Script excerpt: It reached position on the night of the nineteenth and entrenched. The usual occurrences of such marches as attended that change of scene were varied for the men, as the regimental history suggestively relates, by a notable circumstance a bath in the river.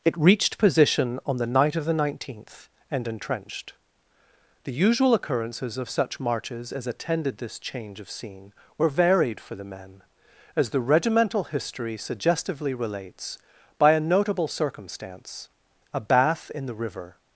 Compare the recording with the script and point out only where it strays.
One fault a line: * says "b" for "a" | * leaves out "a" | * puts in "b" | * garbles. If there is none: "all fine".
* says "this" for "that"